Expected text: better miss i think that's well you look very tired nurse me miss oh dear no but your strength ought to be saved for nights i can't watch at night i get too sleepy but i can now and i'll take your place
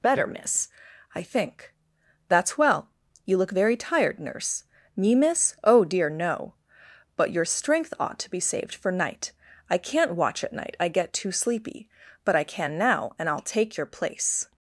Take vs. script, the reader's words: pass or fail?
fail